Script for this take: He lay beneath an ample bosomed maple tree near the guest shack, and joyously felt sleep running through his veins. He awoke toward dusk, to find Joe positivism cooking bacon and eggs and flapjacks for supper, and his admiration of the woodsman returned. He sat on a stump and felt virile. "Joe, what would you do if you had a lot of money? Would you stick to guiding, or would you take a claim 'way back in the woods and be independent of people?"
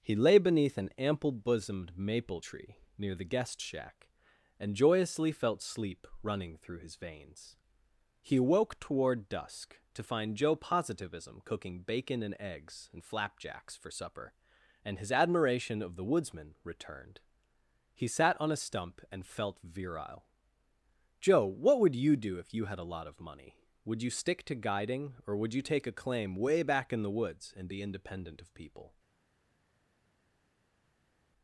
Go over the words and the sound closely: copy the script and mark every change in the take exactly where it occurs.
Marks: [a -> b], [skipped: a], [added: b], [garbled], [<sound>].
He lay beneath an ample bosomed maple tree near the guest shack, and joyously felt sleep running through his veins. He awoke toward dusk, to find Joe positivism cooking bacon and eggs and flapjacks for supper, and his admiration of the woodsman returned. He sat on a stump and felt virile. "Joe, what would you do if you had a lot of money? Would you stick to guiding, or would you take a claim 'way back in the woods and be independent of people?"